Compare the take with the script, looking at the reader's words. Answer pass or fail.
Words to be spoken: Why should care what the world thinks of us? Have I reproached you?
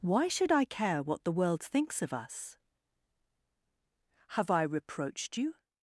fail